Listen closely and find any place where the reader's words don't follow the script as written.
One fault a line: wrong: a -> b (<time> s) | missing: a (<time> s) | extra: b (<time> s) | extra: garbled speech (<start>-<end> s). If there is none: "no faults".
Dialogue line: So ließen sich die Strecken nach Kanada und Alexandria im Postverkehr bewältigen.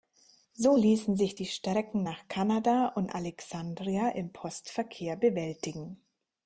no faults